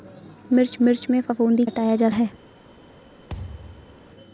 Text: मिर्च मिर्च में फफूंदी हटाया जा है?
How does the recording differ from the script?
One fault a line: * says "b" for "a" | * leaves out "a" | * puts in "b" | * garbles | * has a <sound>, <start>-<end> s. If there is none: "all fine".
* has a thud, 3.3-4.1 s